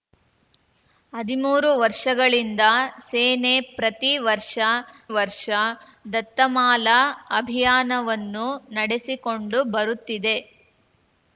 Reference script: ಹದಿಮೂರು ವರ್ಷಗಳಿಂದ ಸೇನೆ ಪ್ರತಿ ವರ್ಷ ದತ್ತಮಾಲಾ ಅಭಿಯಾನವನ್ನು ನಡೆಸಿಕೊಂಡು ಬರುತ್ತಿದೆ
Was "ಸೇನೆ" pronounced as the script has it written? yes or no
yes